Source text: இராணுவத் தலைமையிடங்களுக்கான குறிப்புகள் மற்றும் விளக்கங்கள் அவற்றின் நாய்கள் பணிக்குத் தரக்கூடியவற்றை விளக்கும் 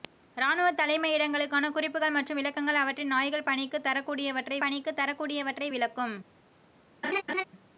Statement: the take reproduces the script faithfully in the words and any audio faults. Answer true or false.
false